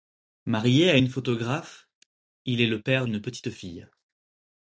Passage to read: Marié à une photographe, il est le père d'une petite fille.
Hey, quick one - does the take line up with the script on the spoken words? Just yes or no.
yes